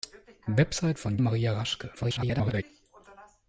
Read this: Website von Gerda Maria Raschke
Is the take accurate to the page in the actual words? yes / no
no